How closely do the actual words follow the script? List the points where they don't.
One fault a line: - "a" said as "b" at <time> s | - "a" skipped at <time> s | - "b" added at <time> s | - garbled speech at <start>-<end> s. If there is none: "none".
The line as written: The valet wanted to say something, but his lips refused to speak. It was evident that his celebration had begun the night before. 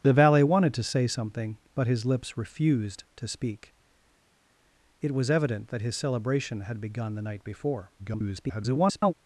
- garbled speech at 8.0-9.1 s